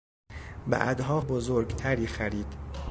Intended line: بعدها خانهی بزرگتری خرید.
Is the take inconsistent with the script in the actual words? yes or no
yes